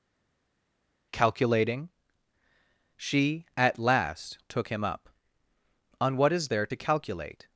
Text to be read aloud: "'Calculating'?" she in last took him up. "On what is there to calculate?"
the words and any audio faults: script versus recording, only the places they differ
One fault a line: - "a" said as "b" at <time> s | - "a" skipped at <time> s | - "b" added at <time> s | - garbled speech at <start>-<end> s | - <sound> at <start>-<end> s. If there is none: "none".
- "in" said as "at" at 3.6 s